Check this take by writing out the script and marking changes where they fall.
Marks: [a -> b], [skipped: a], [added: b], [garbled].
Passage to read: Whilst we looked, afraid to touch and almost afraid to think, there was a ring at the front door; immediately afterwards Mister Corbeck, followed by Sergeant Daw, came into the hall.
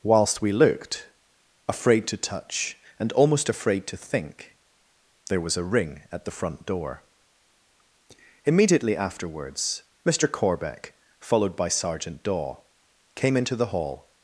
Whilst we looked, afraid to touch and almost afraid to think, there was a ring at the front door; immediately afterwards Mister Corbeck, followed by Sergeant Daw, came into the hall.